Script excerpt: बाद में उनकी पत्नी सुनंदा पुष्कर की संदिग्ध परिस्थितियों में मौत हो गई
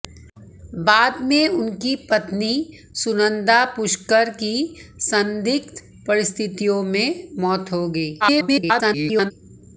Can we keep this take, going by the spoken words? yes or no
no